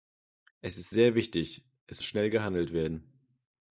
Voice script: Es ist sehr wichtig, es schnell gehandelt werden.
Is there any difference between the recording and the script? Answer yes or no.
no